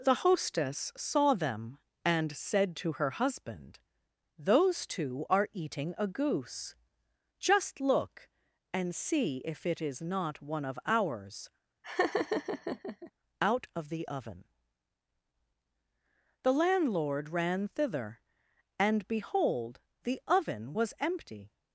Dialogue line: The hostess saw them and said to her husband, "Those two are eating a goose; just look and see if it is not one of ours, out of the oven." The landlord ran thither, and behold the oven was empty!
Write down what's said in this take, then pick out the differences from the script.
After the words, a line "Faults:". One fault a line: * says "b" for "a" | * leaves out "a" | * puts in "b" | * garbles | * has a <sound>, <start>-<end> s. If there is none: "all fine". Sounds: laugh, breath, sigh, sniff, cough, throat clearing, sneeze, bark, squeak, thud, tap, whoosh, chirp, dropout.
The hostess saw them and said to her husband, "Those two are eating a goose; just look and see if it is not one of ours, out of the oven." The landlord ran thither, and behold the oven was empty!
Faults:
* has a laugh, 11.8-13.1 s